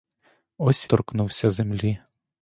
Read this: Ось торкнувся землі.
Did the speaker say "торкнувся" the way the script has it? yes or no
yes